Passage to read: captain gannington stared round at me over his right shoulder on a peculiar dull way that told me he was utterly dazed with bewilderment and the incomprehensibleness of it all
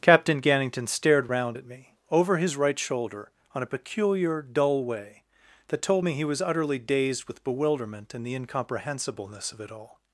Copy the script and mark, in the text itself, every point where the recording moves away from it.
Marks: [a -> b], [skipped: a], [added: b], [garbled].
captain gannington stared round at me over his right shoulder on a peculiar dull way that told me he was utterly dazed with bewilderment and the incomprehensibleness of it all